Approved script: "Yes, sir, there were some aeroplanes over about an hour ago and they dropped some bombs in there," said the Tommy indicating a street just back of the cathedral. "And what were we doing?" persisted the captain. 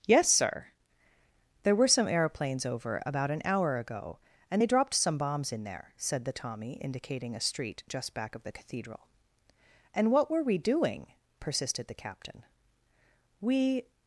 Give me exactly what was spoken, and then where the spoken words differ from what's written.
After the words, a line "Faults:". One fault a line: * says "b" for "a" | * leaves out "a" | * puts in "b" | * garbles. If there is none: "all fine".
"Yes, sir, there were some aeroplanes over about an hour ago and they dropped some bombs in there," said the Tommy indicating a street just back of the cathedral. "And what were we doing?" persisted the captain. "We
Faults:
* puts in "We"